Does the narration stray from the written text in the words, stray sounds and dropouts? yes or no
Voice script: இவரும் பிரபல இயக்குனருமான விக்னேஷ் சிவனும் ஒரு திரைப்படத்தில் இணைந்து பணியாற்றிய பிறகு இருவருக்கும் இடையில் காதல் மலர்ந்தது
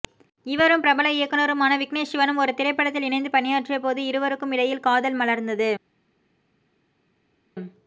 yes